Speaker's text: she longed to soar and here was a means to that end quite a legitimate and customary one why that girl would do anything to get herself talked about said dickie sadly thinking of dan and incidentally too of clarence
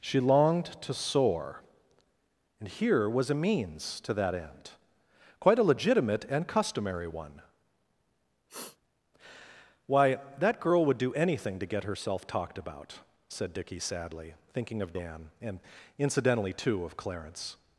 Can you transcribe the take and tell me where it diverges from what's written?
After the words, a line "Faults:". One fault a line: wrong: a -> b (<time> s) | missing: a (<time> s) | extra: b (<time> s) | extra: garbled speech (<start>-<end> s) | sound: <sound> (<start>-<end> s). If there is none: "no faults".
she longed to soar and here was a means to that end quite a legitimate and customary one why that girl would do anything to get herself talked about said dickie sadly thinking of dan and incidentally too of clarence
Faults:
sound: sniff (8.5-8.8 s)